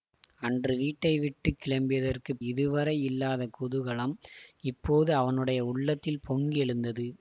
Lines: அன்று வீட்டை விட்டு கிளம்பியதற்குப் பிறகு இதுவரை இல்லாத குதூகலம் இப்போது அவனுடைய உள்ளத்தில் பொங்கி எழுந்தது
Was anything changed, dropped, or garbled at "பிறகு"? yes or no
yes